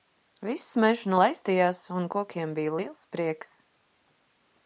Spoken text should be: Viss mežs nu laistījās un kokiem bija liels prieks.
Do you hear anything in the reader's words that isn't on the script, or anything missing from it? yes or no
no